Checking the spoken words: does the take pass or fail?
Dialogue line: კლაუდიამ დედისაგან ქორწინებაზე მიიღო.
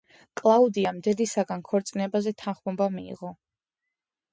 fail